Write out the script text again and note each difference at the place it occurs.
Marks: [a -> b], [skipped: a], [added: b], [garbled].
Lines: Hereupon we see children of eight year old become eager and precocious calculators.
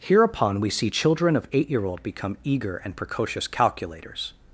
Hereupon we see children of eight year old become eager and precocious calculators.